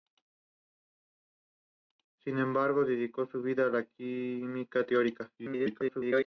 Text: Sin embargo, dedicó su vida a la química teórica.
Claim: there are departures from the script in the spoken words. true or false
true